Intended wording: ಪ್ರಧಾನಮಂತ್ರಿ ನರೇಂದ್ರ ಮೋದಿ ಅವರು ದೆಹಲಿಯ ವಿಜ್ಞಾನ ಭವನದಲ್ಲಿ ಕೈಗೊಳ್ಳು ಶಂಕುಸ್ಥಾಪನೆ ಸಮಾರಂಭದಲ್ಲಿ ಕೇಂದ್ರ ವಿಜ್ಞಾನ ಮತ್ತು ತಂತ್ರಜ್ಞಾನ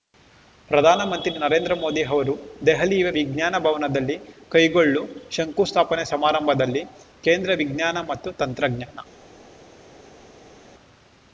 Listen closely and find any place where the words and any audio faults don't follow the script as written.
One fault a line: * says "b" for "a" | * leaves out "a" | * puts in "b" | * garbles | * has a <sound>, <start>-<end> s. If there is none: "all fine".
all fine